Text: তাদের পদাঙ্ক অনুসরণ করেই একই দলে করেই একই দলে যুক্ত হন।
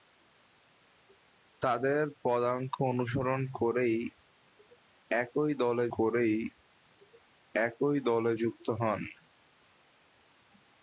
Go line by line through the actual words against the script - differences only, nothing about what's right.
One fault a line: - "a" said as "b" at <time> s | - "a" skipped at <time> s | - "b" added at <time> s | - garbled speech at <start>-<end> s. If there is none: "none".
none